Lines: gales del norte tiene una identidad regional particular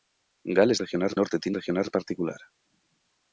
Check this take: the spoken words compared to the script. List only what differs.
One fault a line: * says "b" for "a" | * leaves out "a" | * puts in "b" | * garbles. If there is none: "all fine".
* says "regional" for "del"
* leaves out "una identidad"